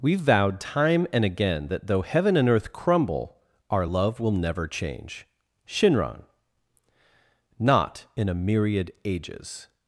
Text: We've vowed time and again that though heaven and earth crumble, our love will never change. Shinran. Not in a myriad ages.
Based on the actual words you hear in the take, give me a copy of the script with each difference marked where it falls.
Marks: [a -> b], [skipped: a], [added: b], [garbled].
We've vowed time and again that though heaven and earth crumble, our love will never change. Shinran. Not in a myriad ages.